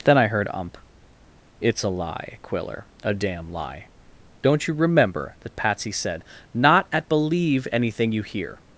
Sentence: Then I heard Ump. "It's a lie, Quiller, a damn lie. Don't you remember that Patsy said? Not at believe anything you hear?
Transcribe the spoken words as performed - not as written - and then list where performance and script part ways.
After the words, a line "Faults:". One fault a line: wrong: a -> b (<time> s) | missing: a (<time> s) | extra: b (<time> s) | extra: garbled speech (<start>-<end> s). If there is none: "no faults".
Then I heard Ump. "It's a lie, Quiller, a damn lie. Don't you remember that Patsy said? Not at believe anything you hear?
Faults:
no faults